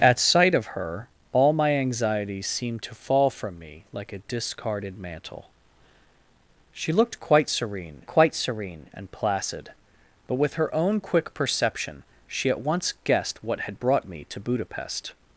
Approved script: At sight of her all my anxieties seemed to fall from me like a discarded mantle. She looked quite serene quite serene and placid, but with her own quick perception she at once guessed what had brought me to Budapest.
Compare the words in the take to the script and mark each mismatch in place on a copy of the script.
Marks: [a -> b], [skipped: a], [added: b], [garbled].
At sight of her all my anxieties seemed to fall from me like a discarded mantle. She looked quite serene quite serene and placid, but with her own quick perception she at once guessed what had brought me to Budapest.